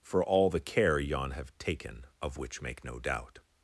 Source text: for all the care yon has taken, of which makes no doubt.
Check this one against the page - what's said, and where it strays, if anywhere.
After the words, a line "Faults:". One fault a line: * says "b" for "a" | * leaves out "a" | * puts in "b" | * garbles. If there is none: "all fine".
for all the care yon have taken, of which make no doubt.
Faults:
* says "have" for "has"
* says "make" for "makes"